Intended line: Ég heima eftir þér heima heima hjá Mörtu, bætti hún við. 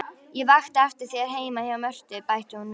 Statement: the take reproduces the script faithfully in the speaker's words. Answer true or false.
false